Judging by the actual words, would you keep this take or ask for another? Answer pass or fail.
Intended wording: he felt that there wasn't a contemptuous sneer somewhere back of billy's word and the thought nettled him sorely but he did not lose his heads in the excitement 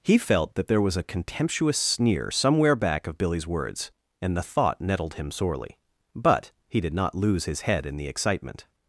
fail